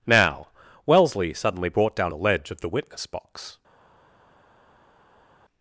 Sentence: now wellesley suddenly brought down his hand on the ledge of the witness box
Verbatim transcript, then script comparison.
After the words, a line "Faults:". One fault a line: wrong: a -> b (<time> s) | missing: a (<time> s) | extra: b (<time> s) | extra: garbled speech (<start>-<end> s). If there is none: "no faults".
now wellesley suddenly brought down the ledge of the witness box
Faults:
missing: his hand on (2.1 s)